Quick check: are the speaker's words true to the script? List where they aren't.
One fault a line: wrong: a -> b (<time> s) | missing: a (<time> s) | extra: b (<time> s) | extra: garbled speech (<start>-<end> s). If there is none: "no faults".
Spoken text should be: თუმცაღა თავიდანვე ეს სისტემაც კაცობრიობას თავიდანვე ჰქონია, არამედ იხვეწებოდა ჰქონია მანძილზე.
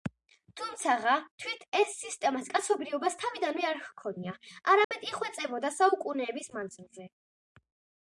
wrong: თავიდანვე -> თვით (1.4 s)
extra: არ (3.7 s)
wrong: ჰქონია -> საუკუნეების (5.8 s)